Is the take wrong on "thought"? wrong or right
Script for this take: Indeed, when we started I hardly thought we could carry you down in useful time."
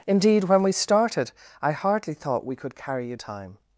right